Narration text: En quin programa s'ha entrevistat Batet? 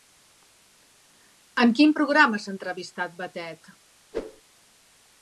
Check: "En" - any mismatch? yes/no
no